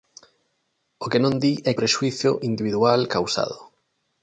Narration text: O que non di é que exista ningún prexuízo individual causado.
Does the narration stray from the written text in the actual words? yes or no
yes